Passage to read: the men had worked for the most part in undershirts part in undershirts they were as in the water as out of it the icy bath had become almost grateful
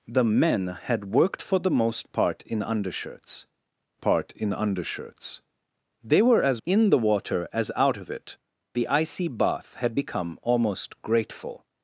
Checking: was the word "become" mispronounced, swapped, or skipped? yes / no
no